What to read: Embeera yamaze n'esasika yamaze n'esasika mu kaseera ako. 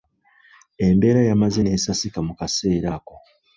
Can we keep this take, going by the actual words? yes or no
no